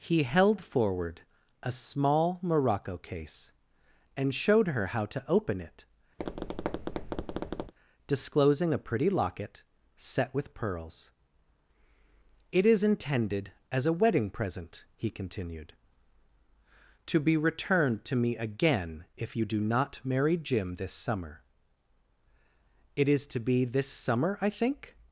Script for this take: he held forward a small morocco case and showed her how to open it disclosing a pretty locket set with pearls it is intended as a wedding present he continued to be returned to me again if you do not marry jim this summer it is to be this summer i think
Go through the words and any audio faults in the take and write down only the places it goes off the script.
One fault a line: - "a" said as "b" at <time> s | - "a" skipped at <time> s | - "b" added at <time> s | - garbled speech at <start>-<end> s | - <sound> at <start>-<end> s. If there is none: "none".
- tap at 6.2-7.7 s